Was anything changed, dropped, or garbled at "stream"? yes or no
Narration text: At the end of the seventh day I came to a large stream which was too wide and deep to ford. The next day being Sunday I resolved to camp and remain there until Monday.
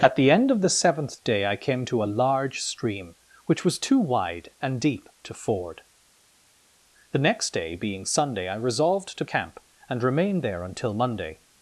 no